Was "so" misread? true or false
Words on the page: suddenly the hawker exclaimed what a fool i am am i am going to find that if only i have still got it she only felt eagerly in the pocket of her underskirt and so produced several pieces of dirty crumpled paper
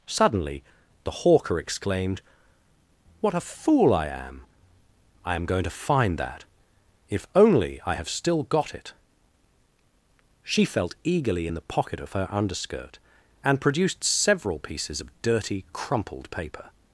true